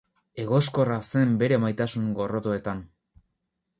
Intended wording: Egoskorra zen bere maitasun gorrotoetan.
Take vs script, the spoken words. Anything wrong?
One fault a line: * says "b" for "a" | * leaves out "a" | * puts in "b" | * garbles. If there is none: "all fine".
all fine